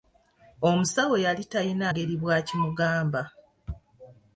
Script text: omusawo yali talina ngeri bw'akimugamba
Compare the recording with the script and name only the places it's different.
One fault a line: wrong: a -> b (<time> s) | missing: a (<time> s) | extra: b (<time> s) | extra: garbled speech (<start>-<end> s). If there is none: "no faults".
no faults